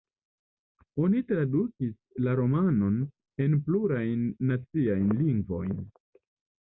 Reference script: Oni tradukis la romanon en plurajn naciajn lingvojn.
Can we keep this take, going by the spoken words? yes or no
yes